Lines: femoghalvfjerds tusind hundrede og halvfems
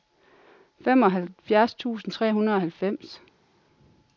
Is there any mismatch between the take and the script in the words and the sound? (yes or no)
yes